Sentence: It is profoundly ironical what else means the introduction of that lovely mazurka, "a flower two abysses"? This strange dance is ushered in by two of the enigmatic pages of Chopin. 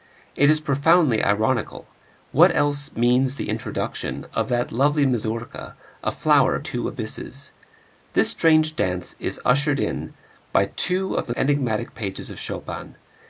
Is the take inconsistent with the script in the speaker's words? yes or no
no